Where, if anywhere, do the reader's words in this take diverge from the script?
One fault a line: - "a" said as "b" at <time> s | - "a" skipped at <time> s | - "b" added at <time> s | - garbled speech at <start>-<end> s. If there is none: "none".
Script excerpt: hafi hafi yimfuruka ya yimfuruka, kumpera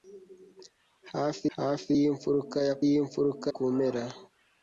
none